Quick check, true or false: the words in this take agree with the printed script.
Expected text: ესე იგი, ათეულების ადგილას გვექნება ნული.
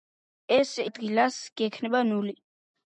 false